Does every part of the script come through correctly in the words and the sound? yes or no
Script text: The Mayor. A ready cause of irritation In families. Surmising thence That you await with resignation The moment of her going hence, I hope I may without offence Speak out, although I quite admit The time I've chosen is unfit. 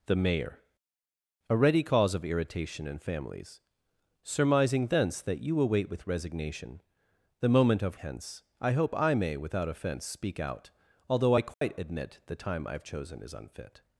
no